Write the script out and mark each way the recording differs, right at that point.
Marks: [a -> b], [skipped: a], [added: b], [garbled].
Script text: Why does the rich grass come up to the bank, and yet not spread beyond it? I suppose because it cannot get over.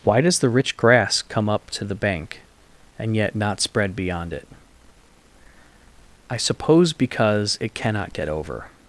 Why does the rich grass come up to the bank, and yet not spread beyond it? I suppose because it cannot get over.